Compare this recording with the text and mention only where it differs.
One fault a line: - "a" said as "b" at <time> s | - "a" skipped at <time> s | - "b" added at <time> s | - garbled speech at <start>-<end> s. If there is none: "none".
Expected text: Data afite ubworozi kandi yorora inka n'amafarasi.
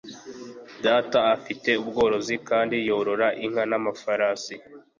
none